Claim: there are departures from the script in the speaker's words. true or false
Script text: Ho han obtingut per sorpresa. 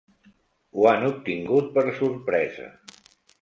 false